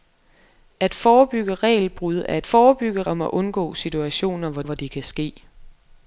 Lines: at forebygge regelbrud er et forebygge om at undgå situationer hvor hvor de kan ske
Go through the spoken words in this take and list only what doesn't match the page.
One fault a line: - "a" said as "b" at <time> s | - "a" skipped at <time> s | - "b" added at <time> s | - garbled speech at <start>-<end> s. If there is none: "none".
none